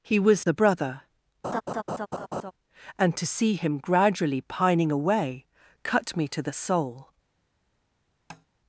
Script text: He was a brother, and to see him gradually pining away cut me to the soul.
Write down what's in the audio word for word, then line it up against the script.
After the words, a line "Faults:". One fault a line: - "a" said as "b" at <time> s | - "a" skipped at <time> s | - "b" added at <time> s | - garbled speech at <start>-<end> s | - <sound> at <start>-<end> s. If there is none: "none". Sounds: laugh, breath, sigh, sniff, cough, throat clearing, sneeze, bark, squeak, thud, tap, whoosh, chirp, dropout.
He was a brother, and to see him gradually pining away cut me to the soul.
Faults:
- laugh at 1.4-2.5 s
- tap at 8.3-8.5 s